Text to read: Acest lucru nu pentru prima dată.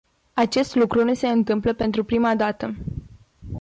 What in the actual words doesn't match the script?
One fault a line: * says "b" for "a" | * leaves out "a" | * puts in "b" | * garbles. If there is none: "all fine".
* puts in "se întâmplă"